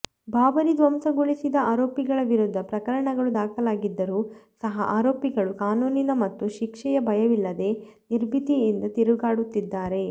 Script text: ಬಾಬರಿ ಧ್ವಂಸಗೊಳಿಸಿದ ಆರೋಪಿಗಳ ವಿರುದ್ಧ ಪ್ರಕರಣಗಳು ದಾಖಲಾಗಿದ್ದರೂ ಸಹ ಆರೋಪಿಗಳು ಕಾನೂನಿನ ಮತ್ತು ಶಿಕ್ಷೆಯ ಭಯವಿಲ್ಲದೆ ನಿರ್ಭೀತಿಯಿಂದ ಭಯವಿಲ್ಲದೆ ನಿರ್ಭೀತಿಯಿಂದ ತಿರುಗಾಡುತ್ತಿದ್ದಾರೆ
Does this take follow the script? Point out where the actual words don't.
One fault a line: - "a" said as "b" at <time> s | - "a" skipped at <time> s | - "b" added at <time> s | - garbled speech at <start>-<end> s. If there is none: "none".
- "ಭಯವಿಲ್ಲದೆ ನಿರ್ಭೀತಿಯಿಂದ" skipped at 8.8 s